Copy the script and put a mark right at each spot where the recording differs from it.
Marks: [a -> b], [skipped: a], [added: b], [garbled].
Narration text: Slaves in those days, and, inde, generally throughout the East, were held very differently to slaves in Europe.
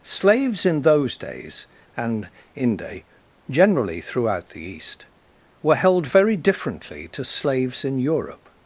Slaves in those days, and, inde, generally throughout the East, were held very differently to slaves in Europe.